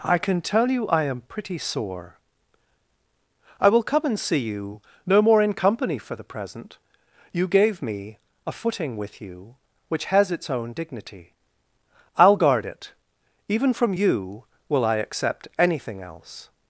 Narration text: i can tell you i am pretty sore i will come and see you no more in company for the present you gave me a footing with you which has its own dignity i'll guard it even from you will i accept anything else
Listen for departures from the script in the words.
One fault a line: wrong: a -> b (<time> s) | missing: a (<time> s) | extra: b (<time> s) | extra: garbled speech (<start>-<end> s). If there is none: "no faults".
no faults